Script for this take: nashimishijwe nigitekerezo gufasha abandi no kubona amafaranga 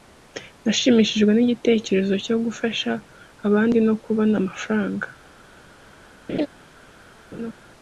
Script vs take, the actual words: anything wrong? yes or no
yes